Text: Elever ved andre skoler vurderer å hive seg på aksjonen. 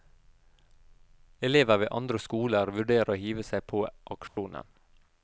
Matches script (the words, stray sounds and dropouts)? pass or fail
fail